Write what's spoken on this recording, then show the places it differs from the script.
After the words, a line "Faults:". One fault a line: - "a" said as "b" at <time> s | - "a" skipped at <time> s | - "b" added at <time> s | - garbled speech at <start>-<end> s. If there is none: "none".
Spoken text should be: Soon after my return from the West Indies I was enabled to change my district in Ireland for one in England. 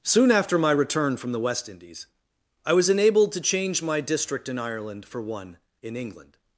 Soon after my return from the West Indies I was enabled to change my district in Ireland for one in England.
Faults:
none